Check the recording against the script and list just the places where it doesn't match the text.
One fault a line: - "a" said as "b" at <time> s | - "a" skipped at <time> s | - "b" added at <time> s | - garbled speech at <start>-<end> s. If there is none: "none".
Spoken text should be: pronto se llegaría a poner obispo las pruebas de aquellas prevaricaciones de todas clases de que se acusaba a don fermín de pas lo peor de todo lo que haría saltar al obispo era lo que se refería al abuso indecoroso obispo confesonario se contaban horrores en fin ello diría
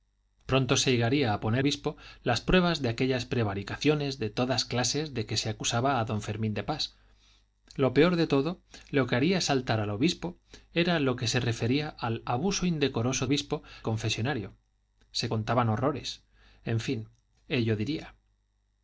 none